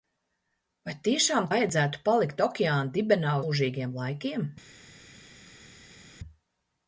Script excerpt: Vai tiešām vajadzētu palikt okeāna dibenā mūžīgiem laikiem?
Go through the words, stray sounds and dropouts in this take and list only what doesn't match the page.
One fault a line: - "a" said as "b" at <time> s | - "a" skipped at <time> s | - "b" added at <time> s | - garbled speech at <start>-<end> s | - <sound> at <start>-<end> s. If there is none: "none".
none